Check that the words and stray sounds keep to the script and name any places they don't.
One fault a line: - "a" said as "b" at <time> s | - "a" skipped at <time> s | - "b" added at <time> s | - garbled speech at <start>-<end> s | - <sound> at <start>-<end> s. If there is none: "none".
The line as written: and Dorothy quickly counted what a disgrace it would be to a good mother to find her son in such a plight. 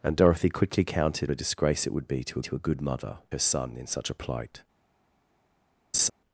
- "what" skipped at 1.3 s
- "to" added at 2.4 s
- "to find" skipped at 3.2 s
- laugh at 5.9-6.1 s